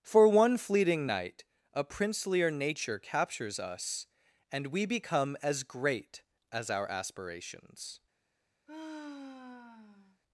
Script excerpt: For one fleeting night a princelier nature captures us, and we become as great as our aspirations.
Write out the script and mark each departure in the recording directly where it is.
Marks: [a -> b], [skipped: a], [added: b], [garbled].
For one fleeting night a princelier nature captures us, and we become as great as our aspirations.